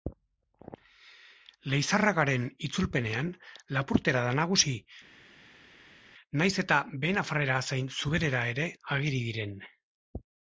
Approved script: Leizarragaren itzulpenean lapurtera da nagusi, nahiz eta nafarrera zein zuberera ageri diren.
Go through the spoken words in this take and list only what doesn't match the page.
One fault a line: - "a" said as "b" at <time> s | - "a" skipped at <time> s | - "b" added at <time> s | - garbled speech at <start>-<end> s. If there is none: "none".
- "behe" added at 7.1 s
- "ere" added at 8.6 s